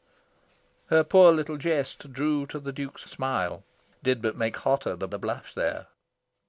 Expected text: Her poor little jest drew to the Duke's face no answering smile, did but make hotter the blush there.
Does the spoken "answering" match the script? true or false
false